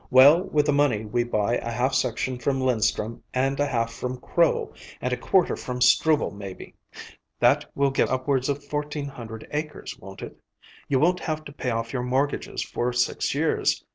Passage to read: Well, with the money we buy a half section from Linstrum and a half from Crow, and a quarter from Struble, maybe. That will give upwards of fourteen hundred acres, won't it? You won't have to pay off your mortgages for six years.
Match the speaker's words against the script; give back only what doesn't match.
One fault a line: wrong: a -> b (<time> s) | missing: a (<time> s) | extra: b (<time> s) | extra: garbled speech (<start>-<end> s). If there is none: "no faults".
no faults